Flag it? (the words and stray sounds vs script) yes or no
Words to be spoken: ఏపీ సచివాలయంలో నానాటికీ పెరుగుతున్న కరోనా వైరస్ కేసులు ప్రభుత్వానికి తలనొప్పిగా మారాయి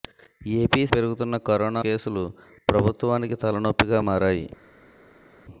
yes